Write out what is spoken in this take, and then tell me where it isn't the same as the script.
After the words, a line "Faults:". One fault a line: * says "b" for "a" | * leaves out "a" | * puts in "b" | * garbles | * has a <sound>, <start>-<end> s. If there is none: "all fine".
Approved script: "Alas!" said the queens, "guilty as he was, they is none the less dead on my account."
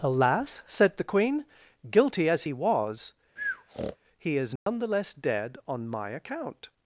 "Alas!" said the queen, "guilty as he was, he is none the less dead on my account."
Faults:
* says "queen" for "queens"
* has a breath, 3.4-4.0 s
* says "he" for "they"
* has a dropout, 4.6-4.7 s